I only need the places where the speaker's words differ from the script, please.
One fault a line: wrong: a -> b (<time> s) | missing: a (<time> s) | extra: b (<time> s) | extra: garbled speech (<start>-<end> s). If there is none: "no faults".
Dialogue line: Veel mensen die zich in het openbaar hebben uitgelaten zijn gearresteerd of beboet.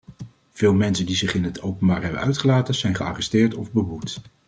no faults